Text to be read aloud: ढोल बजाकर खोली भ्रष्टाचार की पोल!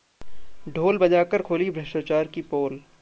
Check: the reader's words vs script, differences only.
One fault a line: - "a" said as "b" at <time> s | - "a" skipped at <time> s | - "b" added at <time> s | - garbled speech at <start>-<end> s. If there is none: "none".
none